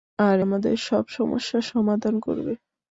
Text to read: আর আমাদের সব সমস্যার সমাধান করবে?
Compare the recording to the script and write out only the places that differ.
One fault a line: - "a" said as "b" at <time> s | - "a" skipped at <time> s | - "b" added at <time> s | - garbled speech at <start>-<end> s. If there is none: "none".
none